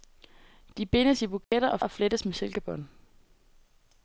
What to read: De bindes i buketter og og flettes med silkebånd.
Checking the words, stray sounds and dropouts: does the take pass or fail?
fail